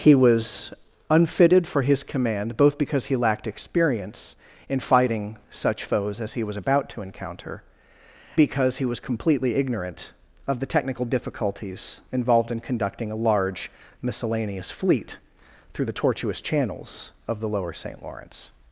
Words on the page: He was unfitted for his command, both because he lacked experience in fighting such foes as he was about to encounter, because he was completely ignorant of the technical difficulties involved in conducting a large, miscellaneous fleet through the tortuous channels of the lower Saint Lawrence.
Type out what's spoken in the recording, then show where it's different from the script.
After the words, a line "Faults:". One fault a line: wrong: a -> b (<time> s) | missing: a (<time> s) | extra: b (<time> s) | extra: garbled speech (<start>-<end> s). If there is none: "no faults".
He was unfitted for his command, both because he lacked experience in fighting such foes as he was about to encounter, because he was completely ignorant of the technical difficulties involved in conducting a large, miscellaneous fleet through the tortuous channels of the lower Saint Lawrence.
Faults:
no faults